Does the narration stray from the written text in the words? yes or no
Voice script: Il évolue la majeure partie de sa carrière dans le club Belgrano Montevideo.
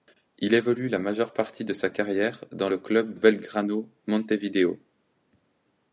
no